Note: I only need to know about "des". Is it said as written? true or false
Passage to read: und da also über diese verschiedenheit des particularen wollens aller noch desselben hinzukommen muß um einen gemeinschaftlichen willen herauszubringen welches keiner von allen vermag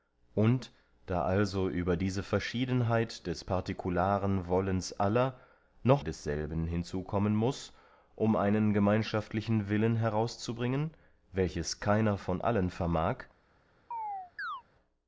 true